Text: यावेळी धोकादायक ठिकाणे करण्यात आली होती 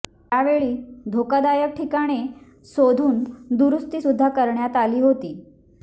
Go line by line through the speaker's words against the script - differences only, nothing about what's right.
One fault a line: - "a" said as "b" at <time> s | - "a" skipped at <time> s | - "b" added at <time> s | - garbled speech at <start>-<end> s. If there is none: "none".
- "शोधून दुरुस्ती सुद्धा" added at 2.7 s